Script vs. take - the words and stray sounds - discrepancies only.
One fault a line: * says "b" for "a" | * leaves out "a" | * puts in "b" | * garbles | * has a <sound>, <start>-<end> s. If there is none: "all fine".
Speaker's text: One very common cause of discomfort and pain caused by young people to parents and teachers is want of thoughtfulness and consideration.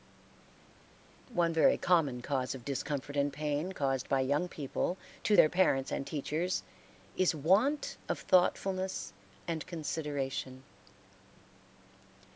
* puts in "their"